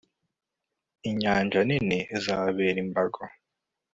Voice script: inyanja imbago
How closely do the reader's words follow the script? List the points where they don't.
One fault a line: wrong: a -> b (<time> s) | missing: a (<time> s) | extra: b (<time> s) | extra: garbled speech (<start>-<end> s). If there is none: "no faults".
extra: nini izababera (1.7 s)